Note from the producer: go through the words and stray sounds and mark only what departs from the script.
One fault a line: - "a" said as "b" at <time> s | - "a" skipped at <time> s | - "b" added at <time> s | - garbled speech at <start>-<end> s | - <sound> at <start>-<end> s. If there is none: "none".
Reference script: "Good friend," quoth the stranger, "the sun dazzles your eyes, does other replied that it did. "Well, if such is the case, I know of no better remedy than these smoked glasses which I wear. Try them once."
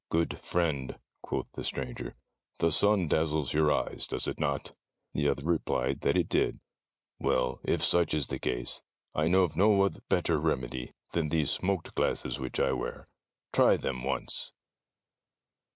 - "it not The" added at 4.3 s